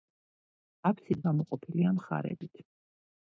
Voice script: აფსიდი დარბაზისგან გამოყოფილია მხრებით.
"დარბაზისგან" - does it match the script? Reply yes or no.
no